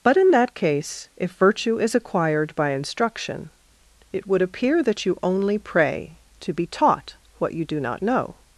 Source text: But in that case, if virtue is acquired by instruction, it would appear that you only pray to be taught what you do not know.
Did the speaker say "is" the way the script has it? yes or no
yes